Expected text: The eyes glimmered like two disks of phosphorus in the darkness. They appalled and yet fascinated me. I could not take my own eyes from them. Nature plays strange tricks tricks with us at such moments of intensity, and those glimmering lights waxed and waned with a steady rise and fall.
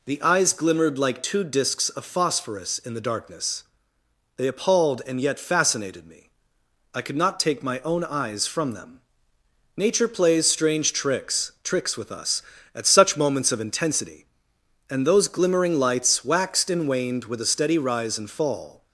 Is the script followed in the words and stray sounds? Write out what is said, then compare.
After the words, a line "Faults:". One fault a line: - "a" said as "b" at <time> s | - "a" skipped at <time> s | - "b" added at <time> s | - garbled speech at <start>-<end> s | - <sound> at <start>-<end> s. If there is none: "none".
The eyes glimmered like two disks of phosphorus in the darkness. They appalled and yet fascinated me. I could not take my own eyes from them. Nature plays strange tricks tricks with us at such moments of intensity, and those glimmering lights waxed and waned with a steady rise and fall.
Faults:
none